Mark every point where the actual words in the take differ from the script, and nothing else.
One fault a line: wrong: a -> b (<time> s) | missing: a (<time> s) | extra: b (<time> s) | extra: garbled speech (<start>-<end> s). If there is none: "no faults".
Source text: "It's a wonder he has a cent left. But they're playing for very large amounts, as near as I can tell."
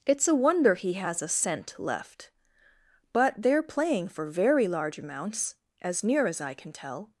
no faults